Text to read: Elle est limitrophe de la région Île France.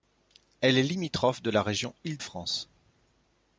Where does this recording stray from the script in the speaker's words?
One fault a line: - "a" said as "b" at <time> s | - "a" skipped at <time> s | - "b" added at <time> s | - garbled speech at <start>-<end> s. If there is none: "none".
none